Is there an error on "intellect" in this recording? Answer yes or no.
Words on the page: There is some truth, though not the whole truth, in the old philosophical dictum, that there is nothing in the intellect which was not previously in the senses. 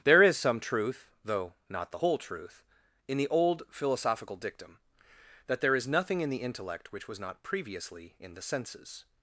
no